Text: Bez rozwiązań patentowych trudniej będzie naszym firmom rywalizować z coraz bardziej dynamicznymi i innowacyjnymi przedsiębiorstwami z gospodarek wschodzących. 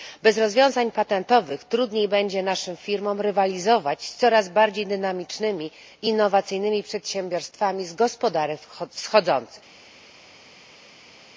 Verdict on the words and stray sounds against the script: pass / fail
pass